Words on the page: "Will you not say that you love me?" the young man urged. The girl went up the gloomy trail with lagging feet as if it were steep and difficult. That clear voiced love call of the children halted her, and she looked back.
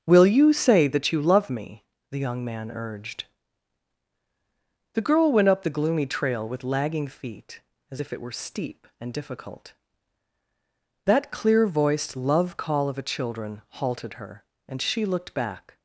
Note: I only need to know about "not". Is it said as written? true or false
false